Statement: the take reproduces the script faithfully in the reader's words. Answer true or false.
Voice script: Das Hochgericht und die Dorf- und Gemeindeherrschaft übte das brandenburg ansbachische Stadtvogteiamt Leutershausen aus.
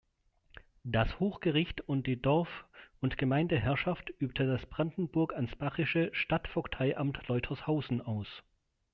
true